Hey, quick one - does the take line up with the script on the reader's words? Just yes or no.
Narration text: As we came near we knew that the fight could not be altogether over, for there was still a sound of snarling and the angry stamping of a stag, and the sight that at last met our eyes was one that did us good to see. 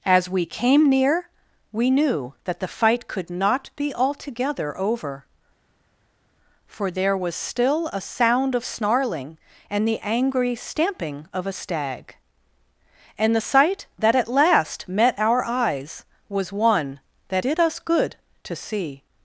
yes